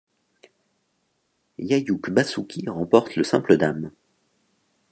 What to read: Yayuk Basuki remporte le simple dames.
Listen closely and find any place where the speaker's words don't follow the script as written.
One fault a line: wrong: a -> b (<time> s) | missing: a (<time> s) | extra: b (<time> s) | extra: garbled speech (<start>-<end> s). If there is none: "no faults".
no faults